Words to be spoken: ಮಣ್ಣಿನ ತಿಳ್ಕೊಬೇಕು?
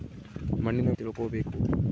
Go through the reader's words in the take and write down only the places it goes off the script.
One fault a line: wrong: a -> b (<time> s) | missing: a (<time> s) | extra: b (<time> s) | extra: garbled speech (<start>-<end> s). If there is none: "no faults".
no faults